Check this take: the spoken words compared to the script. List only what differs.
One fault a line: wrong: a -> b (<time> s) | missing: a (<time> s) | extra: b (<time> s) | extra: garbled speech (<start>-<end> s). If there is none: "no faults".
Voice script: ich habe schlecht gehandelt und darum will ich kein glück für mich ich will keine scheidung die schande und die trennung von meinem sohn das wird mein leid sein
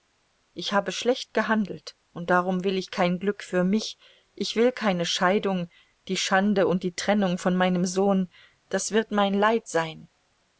no faults